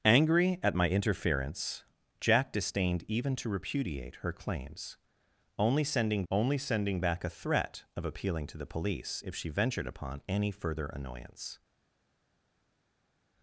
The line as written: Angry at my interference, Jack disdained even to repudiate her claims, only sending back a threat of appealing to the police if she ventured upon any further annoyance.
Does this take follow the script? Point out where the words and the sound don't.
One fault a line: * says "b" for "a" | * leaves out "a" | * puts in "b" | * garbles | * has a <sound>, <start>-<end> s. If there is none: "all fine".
* puts in "only sending"